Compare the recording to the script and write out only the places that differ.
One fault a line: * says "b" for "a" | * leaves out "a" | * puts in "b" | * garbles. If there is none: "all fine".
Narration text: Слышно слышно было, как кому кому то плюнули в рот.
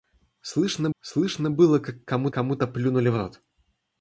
all fine